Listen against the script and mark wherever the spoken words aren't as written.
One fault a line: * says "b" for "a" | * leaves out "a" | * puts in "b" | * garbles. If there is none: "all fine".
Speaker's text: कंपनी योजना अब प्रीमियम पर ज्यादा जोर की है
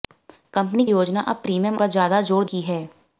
all fine